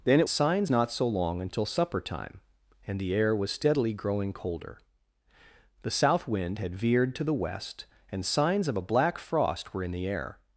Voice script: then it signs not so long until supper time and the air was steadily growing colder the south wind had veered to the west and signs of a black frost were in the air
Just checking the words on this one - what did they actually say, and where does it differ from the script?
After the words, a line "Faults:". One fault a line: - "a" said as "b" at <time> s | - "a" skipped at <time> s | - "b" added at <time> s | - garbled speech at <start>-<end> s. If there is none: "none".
then it signs not so long until supper time and the air was steadily growing colder the south wind had veered to the west and signs of a black frost were in the air
Faults:
none